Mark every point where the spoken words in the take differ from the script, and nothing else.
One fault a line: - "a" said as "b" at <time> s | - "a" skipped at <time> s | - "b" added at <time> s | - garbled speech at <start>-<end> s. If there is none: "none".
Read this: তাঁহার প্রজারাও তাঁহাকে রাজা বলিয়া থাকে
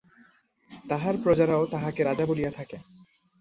none